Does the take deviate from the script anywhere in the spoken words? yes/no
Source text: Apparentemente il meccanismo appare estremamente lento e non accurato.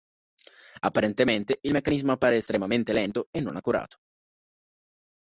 no